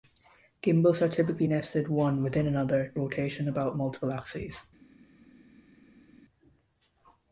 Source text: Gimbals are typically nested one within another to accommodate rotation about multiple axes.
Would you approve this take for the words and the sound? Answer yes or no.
no